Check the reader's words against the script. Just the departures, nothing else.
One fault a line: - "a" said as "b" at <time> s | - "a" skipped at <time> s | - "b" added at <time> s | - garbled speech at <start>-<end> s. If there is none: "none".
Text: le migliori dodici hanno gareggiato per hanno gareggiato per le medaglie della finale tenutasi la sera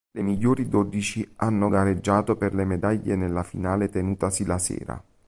- "hanno gareggiato per" skipped at 2.5 s
- "della" said as "nella" at 3.2 s